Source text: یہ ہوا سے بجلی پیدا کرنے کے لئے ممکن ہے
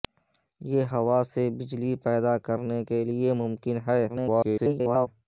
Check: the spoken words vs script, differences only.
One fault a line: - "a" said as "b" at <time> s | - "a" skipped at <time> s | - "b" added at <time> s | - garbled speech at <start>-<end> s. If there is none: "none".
- garbled speech at 4.1-5.1 s